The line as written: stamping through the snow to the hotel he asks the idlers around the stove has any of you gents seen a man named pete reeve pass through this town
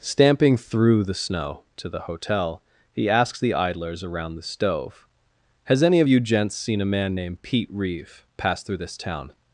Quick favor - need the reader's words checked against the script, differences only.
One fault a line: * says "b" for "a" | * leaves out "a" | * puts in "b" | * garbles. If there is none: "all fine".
all fine